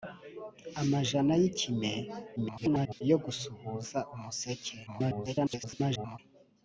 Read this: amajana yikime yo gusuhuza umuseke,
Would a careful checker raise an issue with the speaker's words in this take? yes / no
yes